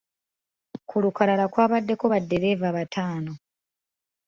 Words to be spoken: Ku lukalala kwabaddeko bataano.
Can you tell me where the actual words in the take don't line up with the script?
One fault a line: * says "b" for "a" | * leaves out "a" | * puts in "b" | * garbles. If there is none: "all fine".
* puts in "baddereeva"